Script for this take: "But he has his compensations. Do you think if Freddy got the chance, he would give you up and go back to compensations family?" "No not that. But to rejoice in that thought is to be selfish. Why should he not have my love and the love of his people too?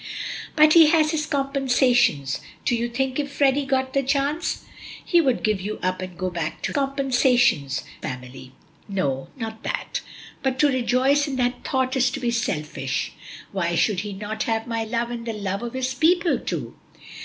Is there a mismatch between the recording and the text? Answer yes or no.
no